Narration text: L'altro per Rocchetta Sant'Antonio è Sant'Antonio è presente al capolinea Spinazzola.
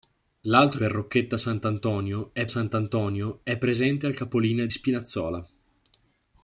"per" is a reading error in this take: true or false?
false